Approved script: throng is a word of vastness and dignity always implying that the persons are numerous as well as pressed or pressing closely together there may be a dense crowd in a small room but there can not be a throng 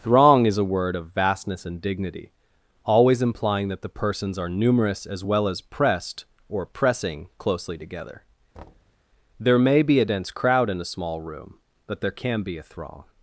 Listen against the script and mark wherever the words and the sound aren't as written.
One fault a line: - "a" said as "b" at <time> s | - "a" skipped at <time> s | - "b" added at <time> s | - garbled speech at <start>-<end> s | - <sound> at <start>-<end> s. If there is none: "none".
- thud at 8.5-9.0 s
- "not" skipped at 12.4 s